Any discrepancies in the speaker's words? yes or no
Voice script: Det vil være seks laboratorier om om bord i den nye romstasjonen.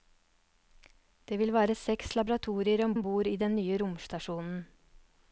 no